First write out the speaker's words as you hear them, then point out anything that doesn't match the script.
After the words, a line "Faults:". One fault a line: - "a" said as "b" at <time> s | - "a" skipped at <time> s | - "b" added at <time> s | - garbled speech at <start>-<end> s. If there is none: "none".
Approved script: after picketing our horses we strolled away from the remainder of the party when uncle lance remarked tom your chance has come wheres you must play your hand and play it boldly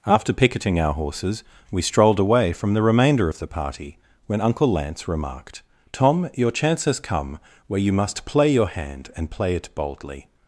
after picketing our horses we strolled away from the remainder of the party when uncle lance remarked tom your chance has come where you must play your hand and play it boldly
Faults:
- "wheres" said as "where" at 7.7 s